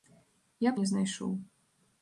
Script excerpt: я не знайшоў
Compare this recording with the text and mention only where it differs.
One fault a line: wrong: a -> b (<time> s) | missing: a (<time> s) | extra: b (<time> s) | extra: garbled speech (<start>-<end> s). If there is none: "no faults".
no faults